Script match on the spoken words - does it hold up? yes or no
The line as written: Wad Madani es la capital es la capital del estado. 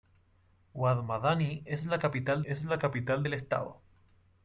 yes